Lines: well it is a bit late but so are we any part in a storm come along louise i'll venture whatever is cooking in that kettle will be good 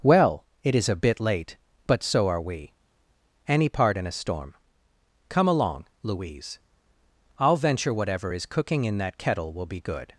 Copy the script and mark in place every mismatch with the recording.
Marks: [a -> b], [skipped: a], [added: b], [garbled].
well it is a bit late but so are we any part in a storm come along louise i'll venture whatever is cooking in that kettle will be good